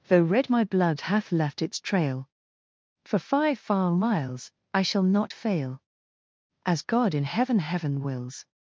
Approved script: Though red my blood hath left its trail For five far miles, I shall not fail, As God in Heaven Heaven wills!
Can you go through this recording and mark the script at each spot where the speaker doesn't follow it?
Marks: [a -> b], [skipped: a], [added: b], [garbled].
Though red my blood hath left its trail For five far miles, I shall not fail, As God in Heaven Heaven wills!